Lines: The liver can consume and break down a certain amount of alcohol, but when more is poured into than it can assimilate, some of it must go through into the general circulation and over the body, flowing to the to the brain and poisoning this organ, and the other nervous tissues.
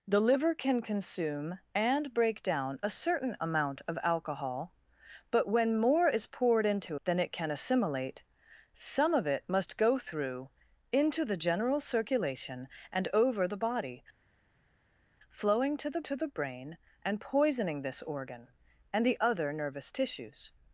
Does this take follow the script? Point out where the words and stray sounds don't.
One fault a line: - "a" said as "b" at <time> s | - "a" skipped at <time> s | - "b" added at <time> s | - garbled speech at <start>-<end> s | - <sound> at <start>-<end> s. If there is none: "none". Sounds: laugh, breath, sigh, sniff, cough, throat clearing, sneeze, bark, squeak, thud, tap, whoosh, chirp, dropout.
none